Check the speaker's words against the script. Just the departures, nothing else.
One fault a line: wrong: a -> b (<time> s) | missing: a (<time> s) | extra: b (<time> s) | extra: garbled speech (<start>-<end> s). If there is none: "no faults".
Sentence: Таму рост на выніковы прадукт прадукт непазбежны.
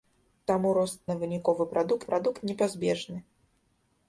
no faults